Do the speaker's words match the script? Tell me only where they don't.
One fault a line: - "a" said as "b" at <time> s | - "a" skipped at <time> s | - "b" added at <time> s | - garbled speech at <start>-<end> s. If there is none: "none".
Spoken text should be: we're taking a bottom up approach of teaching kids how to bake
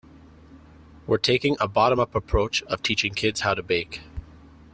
none